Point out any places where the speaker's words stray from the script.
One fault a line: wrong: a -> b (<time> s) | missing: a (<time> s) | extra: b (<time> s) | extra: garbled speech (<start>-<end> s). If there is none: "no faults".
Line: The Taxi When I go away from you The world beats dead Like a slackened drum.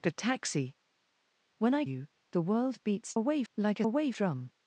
missing: go away from (1.9 s)
wrong: dead -> away (3.1 s)
wrong: slackened -> away (3.8 s)